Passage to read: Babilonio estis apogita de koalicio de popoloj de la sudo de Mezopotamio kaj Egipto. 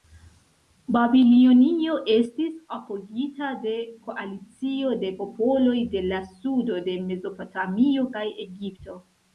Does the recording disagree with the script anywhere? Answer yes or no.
no